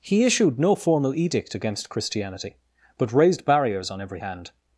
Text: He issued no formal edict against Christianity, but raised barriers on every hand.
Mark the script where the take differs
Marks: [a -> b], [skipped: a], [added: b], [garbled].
He issued no formal edict against Christianity, but raised barriers on every hand.